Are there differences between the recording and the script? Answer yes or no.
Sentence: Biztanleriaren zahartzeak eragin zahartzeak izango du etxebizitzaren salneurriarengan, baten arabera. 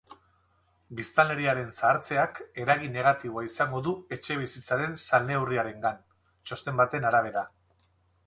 yes